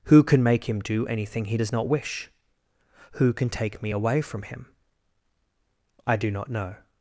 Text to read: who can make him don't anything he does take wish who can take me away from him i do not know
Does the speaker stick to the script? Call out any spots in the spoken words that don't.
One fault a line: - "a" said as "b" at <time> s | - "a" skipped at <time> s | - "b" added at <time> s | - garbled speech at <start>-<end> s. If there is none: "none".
- "don't" said as "do" at 0.8 s
- "take" said as "not" at 1.7 s